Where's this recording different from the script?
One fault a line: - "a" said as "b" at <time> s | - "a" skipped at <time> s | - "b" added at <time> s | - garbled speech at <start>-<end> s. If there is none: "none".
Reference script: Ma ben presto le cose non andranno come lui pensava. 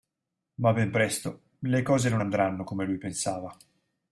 none